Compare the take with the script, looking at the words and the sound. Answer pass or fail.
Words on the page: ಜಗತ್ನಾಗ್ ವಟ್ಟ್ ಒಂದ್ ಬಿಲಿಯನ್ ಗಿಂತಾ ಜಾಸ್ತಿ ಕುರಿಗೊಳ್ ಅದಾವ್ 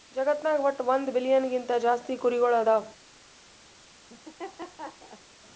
fail